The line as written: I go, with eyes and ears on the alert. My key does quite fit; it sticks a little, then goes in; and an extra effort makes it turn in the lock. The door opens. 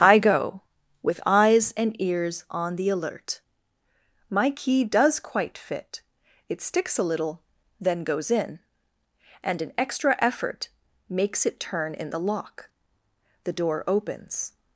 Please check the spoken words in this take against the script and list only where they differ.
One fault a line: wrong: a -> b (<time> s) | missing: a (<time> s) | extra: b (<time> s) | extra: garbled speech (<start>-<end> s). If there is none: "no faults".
no faults